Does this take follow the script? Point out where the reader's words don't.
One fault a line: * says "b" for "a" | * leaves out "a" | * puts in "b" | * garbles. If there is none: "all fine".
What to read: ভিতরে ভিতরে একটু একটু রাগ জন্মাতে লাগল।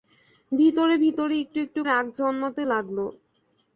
all fine